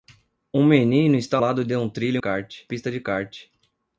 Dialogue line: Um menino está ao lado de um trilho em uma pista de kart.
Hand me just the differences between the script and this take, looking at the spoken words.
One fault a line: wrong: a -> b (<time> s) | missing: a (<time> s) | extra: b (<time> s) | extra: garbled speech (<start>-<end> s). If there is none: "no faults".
missing: ao (1.4 s)
wrong: uma -> kart (2.2 s)